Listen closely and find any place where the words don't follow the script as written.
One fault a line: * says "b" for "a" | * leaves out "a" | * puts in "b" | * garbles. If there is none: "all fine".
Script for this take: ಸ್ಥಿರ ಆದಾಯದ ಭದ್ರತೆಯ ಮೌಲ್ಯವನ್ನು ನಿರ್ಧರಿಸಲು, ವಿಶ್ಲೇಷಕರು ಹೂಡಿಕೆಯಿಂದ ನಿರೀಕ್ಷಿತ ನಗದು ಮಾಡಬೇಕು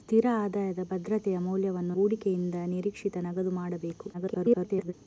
* leaves out "ನಿರ್ಧರಿಸಲು ವಿಶ್ಲೇಷಕರು"
* garbles